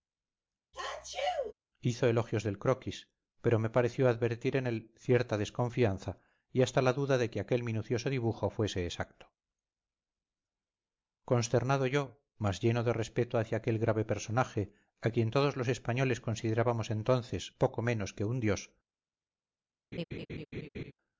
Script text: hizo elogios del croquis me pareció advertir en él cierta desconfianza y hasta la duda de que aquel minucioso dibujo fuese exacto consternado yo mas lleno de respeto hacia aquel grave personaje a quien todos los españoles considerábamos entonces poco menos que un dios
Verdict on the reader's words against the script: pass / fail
fail